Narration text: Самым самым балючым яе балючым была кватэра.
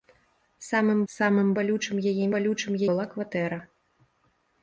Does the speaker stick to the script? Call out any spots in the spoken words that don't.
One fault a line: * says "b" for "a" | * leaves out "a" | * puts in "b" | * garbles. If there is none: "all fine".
all fine